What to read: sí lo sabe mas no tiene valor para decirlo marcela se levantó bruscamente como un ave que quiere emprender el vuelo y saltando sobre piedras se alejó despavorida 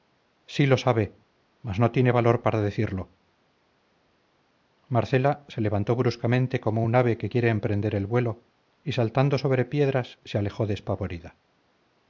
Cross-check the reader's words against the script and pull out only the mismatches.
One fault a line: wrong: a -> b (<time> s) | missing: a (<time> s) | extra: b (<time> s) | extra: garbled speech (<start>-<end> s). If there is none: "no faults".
no faults